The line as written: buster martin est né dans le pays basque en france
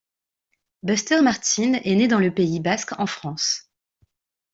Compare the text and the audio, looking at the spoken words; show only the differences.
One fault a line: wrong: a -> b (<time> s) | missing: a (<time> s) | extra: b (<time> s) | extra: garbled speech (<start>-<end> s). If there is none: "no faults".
no faults